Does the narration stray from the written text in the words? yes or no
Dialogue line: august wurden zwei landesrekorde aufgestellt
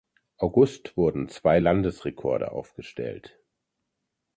no